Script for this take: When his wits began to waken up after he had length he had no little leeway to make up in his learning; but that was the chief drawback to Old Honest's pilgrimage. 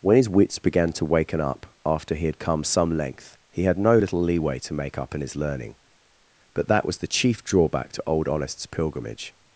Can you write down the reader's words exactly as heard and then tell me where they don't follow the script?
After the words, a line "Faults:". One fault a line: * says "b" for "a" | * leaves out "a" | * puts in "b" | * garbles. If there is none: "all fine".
When his wits began to waken up after he had come some length he had no little leeway to make up in his learning; but that was the chief drawback to Old Honest's pilgrimage.
Faults:
* puts in "come some"